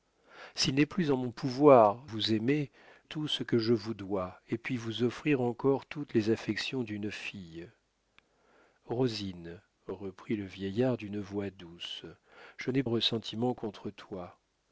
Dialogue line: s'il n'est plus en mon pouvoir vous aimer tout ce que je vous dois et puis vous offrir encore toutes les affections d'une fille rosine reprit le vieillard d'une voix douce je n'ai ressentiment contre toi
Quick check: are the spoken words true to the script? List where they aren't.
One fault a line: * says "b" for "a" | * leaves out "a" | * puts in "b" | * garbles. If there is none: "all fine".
all fine